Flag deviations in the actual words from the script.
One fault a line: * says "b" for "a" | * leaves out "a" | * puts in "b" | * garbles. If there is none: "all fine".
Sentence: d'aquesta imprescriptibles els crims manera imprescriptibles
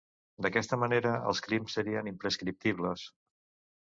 * says "manera" for "imprescriptibles"
* says "serien" for "manera"